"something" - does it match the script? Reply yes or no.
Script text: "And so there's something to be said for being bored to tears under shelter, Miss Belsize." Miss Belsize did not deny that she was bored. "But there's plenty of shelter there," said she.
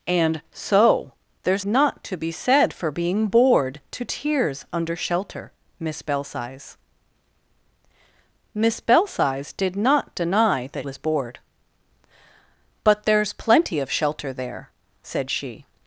no